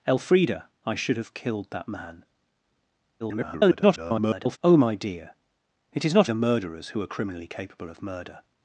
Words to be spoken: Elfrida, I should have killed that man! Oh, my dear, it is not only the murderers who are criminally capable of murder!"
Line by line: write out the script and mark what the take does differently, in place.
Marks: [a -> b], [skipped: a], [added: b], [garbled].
Elfrida, I should have killed that man! [garbled] Oh, my dear, it is not [skipped: only] the murderers who are criminally capable of murder!"